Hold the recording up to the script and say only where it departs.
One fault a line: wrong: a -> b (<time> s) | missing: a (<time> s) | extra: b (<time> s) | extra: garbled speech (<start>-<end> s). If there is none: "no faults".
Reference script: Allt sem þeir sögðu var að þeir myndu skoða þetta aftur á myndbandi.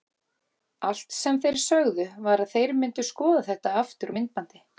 no faults